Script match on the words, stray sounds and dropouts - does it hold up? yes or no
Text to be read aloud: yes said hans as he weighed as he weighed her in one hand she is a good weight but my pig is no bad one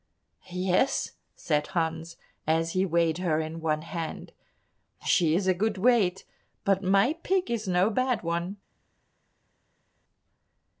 no